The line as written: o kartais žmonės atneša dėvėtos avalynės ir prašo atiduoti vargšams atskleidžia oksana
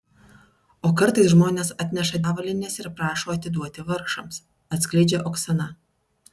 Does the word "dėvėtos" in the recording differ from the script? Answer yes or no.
yes